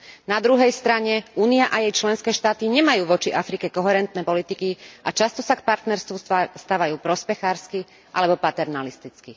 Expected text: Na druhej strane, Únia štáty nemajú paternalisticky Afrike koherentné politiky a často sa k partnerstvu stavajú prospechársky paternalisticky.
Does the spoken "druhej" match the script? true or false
true